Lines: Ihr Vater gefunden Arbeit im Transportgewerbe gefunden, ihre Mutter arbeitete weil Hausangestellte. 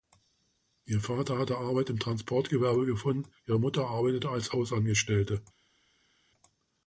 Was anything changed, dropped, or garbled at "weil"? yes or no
yes